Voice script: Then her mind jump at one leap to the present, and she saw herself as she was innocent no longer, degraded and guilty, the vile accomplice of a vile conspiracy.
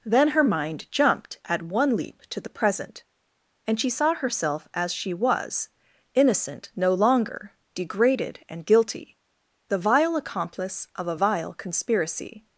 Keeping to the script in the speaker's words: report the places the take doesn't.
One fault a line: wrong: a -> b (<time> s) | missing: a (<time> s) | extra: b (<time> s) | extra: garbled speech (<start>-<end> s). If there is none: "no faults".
wrong: jump -> jumped (0.9 s)